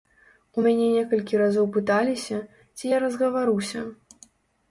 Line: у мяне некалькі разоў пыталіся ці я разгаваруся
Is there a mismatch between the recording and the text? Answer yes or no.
no